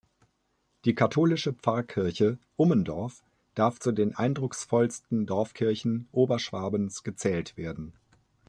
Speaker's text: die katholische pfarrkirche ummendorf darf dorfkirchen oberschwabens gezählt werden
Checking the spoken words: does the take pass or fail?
fail